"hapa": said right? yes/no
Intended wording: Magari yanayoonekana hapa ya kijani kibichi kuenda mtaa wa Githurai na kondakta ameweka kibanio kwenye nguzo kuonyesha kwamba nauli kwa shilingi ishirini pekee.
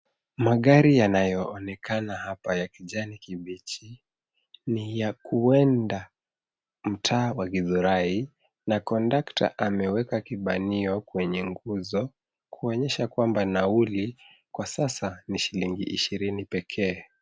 yes